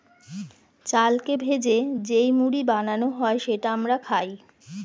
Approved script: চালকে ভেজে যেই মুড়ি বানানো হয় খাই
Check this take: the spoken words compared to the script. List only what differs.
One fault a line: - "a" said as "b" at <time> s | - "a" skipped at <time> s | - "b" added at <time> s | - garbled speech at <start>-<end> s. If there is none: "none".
- "সেটা আমরা" added at 3.4 s